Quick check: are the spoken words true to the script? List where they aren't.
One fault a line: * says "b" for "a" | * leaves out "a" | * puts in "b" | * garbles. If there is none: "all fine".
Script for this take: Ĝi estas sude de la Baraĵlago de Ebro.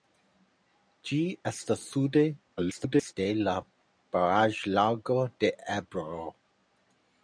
* garbles